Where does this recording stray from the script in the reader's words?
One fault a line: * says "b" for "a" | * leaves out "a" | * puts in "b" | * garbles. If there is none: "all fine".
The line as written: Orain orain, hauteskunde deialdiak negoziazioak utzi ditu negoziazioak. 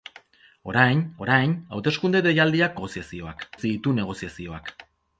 all fine